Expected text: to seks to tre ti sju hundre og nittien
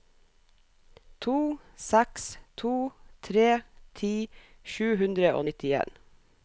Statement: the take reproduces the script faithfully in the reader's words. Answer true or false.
true